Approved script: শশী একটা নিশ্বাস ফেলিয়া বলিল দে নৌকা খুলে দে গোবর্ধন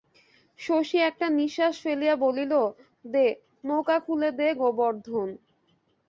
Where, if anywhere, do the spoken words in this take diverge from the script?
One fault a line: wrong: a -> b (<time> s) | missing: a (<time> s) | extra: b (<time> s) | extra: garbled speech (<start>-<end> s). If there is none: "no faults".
no faults